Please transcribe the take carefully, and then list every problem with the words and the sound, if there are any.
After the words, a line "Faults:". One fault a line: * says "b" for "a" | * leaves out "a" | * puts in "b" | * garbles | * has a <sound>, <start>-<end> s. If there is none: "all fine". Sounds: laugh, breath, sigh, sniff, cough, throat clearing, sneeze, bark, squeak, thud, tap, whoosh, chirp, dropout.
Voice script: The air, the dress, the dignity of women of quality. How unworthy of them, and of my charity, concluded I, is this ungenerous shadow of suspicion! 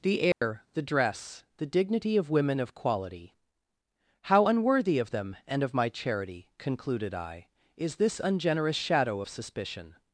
The air, the dress, the dignity of women of quality. How unworthy of them, and of my charity, concluded I, is this ungenerous shadow of suspicion!
Faults:
* has a dropout, 0.3-0.4 s